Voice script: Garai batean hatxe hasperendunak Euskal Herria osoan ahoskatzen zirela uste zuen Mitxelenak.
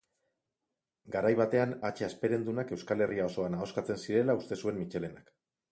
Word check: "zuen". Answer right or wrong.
right